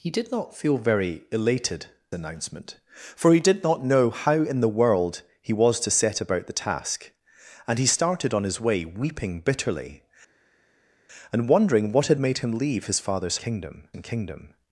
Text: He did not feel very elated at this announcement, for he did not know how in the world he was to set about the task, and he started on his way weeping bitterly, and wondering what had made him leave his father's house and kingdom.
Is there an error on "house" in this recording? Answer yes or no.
yes